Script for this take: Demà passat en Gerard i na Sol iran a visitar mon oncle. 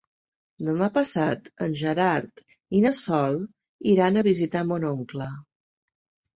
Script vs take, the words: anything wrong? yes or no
no